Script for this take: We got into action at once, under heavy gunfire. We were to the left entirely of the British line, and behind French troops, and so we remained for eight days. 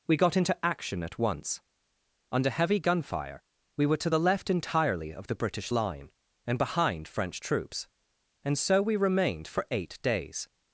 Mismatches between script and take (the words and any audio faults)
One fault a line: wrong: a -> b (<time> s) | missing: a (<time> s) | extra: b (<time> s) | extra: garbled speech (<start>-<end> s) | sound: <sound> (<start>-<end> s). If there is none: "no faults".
no faults